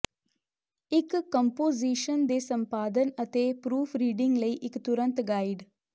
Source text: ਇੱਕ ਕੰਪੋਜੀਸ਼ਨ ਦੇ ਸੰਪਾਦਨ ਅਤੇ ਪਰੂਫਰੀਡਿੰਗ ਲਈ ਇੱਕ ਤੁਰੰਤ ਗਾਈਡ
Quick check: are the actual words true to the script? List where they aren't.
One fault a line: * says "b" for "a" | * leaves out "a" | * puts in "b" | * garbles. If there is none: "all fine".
all fine